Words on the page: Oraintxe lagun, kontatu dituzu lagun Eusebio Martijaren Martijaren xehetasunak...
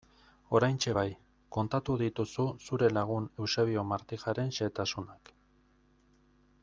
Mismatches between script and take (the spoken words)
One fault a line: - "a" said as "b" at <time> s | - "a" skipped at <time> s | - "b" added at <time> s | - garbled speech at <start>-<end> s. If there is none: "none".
- "lagun" said as "bai" at 1.0 s
- "zure" added at 2.7 s
- "Martijaren" skipped at 4.6 s